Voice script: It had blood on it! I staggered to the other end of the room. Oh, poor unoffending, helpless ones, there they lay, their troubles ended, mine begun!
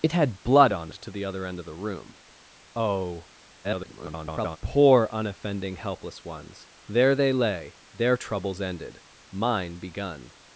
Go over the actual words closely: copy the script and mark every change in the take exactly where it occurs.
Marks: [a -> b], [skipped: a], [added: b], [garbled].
It had blood on [skipped: it! I staggered] to the other end of the room. Oh, [garbled] poor unoffending, helpless ones, there they lay, their troubles ended, mine begun!